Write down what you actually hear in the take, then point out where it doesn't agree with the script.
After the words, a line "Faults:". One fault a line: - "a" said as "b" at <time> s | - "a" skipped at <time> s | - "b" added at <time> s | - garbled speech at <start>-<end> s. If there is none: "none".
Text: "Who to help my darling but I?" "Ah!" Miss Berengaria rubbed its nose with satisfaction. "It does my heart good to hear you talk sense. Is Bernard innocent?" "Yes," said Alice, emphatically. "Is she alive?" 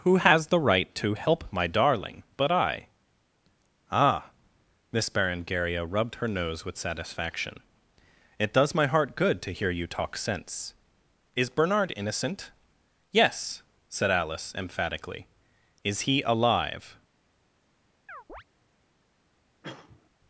"Who has the right to help my darling but I?" "Ah!" Miss Berengaria rubbed her nose with satisfaction. "It does my heart good to hear you talk sense. Is Bernard innocent?" "Yes," said Alice, emphatically. "Is he alive?"
Faults:
- "has the right" added at 0.2 s
- "its" said as "her" at 6.2 s
- "she" said as "he" at 16.0 s